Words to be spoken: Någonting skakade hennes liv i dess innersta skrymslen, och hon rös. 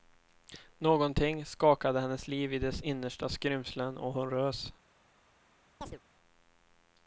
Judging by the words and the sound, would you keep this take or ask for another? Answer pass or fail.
fail